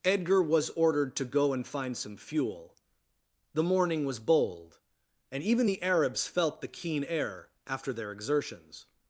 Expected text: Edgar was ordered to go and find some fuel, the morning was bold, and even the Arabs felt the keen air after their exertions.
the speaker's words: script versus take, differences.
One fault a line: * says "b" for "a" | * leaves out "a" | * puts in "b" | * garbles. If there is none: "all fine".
all fine